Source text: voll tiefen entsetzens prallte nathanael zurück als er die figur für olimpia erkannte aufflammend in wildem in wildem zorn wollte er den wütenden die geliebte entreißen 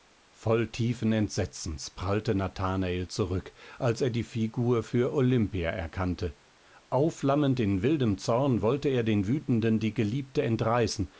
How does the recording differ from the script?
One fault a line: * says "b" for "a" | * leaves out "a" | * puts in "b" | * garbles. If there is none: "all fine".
* leaves out "in wildem"